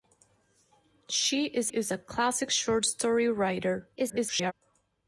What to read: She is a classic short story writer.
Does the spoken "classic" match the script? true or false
true